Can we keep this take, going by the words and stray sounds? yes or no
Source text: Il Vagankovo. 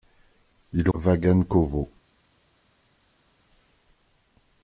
yes